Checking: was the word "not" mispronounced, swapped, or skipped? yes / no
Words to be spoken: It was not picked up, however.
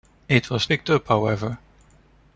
yes